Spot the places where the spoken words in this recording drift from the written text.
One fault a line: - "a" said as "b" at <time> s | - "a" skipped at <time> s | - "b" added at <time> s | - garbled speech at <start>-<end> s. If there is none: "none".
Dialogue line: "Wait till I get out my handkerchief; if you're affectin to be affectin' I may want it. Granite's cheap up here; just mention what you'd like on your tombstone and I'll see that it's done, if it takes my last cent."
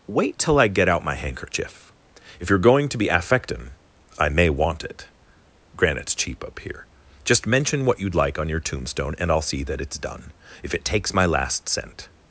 - "affectin" said as "going" at 2.6 s